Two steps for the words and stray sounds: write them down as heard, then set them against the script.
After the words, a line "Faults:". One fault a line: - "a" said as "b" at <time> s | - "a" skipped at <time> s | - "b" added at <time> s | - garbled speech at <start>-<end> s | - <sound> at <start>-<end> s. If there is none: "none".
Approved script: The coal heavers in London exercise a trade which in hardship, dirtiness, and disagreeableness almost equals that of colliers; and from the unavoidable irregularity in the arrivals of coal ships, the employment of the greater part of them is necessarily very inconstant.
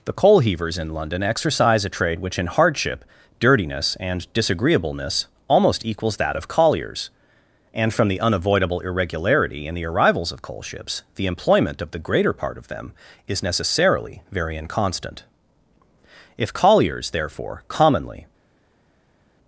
The coal heavers in London exercise a trade which in hardship, dirtiness, and disagreeableness almost equals that of colliers; and from the unavoidable irregularity in the arrivals of coal ships, the employment of the greater part of them is necessarily very inconstant. If colliers, therefore, commonly
Faults:
- "If colliers therefore commonly" added at 16.4 s